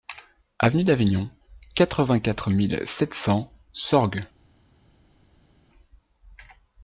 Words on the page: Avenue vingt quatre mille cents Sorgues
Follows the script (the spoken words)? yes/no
no